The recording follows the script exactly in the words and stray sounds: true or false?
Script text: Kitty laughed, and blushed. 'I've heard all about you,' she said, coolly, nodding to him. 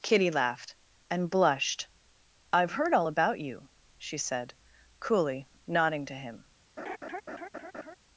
false